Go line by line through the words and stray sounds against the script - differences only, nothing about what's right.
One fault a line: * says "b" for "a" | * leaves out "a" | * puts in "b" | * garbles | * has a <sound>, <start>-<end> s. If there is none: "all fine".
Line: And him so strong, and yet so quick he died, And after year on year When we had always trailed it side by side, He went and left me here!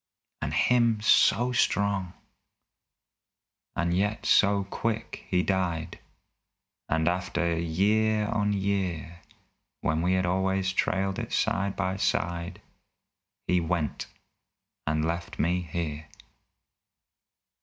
all fine